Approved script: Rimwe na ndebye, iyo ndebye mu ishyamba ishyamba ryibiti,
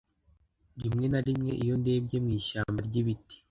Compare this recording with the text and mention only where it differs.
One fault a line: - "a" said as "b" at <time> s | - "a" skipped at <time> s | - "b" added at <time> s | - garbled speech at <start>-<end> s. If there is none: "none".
- "ndebye" said as "rimwe" at 1.3 s
- "ishyamba" skipped at 2.8 s